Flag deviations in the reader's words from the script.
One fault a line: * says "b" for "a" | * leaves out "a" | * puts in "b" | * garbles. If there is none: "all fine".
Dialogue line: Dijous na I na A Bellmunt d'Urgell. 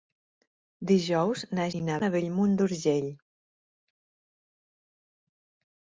all fine